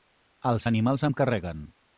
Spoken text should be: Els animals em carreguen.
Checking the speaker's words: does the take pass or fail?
pass